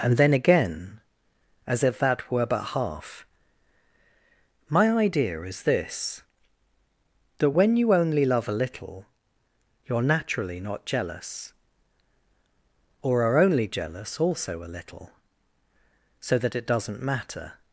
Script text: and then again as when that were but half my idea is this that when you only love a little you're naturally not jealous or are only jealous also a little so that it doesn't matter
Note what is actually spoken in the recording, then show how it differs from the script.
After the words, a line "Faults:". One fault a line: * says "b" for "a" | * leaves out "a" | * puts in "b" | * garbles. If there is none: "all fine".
and then again as if that were but half my idea is this that when you only love a little you're naturally not jealous or are only jealous also a little so that it doesn't matter
Faults:
* says "if" for "when"